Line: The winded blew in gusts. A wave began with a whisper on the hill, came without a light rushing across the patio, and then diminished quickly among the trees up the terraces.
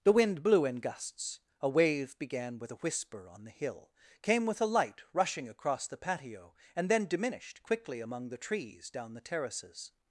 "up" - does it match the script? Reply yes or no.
no